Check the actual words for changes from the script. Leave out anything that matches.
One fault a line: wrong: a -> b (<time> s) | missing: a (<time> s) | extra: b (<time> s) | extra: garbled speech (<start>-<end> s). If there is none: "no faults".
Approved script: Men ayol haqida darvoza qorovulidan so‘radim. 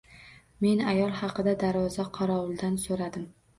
no faults